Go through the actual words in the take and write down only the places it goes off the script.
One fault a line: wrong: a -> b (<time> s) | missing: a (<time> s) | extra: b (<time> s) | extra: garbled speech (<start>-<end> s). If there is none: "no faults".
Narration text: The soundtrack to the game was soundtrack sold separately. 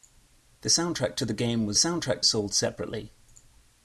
no faults